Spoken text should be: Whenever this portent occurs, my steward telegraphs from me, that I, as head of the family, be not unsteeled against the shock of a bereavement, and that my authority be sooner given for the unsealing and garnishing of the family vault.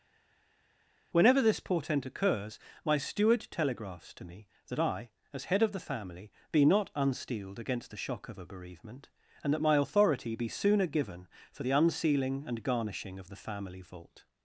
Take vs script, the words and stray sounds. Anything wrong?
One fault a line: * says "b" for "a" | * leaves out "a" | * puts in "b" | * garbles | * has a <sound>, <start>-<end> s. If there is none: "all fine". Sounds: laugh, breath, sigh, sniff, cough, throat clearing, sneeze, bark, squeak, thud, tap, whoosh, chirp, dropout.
* says "to" for "from"